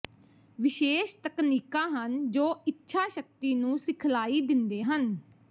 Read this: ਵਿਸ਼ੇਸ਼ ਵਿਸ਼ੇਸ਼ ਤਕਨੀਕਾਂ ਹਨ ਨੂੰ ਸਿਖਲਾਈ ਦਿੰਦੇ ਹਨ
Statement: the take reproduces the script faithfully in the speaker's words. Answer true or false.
false